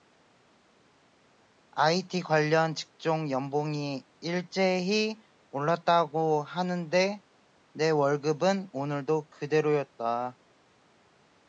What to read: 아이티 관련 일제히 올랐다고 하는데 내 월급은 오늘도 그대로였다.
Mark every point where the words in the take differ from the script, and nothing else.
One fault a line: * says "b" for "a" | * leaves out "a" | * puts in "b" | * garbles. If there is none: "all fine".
* puts in "직종 연봉이"